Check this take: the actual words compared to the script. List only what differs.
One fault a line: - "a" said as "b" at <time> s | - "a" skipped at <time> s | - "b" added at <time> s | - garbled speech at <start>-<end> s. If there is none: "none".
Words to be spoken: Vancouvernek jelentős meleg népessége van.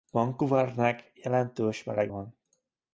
- "népessége" skipped at 2.1 s